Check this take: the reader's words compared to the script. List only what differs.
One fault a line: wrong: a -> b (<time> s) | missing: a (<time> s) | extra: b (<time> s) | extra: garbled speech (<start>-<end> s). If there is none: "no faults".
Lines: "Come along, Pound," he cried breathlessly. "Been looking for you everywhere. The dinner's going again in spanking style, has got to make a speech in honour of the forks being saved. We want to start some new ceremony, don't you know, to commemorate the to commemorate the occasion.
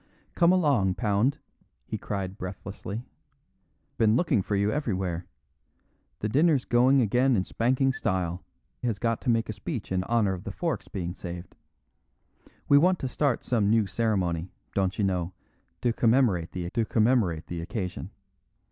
no faults